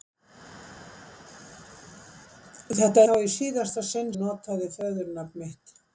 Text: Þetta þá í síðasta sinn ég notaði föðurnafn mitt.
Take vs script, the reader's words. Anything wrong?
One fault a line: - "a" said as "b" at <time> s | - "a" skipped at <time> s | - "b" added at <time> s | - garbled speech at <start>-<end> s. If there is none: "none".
none